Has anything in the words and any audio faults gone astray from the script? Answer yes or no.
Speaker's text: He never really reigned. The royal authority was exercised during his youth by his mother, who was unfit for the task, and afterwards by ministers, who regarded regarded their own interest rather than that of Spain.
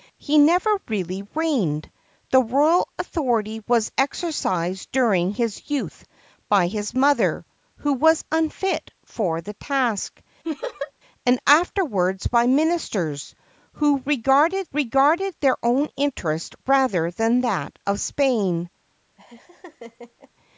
yes